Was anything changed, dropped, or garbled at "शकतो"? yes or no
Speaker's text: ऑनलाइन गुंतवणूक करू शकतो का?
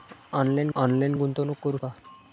yes